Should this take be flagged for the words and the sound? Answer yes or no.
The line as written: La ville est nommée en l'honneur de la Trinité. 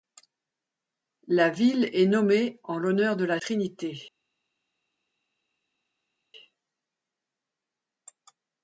no